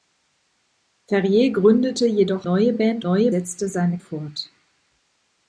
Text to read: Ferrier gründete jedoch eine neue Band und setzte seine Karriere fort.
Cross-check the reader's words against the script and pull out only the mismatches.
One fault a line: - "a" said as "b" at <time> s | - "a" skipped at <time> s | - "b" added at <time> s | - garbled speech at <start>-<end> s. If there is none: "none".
- "eine" skipped at 2.5 s
- "und" said as "neue" at 3.0 s
- "Karriere" skipped at 4.0 s